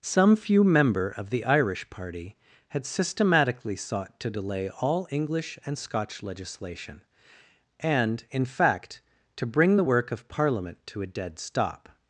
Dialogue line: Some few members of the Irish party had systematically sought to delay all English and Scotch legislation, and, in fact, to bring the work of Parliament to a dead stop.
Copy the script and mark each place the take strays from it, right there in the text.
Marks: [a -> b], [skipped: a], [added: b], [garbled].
Some few [members -> member] of the Irish party had systematically sought to delay all English and Scotch legislation, and, in fact, to bring the work of Parliament to a dead stop.